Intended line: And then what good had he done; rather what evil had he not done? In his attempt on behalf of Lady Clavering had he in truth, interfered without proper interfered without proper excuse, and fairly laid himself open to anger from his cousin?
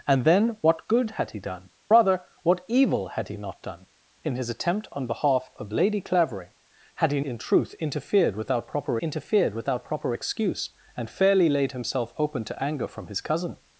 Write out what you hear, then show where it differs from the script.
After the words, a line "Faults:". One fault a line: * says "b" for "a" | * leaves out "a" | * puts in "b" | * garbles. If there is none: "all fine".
And then what good had he done; rather what evil had he not done? In his attempt on behalf of Lady Clavering had he in truth, interfered without proper interfered without proper excuse, and fairly laid himself open to anger from his cousin?
Faults:
all fine